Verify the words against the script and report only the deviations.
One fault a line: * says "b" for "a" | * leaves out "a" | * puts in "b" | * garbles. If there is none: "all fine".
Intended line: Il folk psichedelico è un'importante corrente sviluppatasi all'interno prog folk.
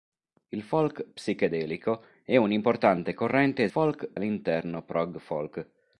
* says "folk" for "sviluppatasi"